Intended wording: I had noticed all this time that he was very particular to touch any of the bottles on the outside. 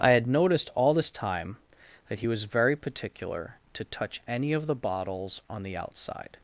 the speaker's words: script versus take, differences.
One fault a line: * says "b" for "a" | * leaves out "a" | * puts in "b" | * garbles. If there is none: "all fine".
all fine